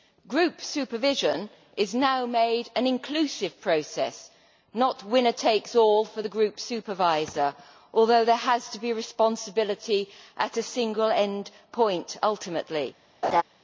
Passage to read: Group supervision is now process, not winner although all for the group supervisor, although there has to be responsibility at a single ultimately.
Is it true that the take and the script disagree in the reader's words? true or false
true